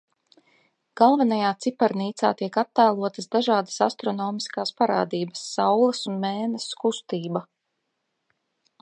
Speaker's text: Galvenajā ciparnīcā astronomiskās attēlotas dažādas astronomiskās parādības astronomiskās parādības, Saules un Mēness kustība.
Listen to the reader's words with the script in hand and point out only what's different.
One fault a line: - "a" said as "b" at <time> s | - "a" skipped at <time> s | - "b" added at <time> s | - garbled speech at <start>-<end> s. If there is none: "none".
- "astronomiskās" said as "tiek" at 2.4 s
- "astronomiskās parādības" skipped at 5.5 s